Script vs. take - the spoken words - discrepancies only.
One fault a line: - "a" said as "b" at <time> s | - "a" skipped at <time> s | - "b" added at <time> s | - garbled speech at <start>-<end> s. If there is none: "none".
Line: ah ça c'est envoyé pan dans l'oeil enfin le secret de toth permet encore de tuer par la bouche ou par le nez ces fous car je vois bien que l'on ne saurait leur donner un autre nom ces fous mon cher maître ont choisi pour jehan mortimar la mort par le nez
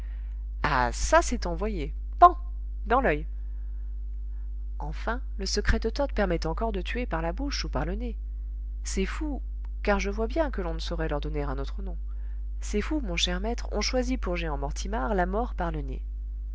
none